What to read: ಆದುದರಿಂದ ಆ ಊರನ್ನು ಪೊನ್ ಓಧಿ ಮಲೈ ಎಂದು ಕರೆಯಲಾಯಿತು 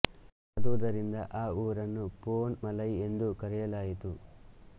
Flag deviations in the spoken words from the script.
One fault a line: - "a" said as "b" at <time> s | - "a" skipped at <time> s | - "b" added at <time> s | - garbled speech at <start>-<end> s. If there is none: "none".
- "ಓಧಿ" skipped at 2.5 s